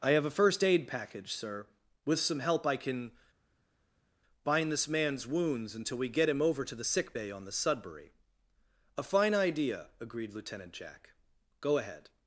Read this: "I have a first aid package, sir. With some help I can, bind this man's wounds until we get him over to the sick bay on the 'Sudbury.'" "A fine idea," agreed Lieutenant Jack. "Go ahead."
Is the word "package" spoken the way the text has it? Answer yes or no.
yes